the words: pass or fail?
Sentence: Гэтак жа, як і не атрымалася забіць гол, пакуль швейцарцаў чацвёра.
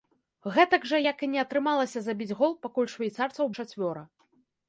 pass